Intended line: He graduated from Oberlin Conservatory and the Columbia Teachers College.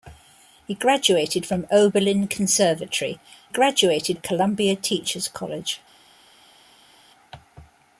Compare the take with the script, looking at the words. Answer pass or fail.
fail